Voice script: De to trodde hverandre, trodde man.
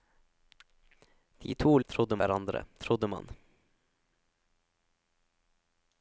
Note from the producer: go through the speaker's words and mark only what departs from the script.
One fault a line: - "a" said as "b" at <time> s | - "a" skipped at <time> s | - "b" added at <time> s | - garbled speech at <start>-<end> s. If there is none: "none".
none